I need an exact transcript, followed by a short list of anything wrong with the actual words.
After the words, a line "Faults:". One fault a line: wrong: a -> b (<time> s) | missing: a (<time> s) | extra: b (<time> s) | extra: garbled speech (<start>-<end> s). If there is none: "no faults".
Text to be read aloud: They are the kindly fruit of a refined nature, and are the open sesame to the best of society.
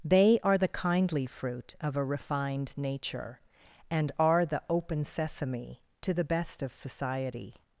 They are the kindly fruit of a refined nature, and are the open sesame to the best of society.
Faults:
no faults